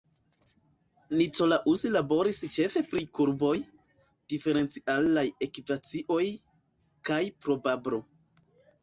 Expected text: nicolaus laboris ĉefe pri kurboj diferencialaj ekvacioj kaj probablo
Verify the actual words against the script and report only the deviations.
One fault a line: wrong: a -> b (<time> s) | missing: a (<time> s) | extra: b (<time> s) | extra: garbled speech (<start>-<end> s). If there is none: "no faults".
no faults